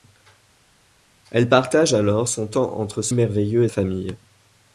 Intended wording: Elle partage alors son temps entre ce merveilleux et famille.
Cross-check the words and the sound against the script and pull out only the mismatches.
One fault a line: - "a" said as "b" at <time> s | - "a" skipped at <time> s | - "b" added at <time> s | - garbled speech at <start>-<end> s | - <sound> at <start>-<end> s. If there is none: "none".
none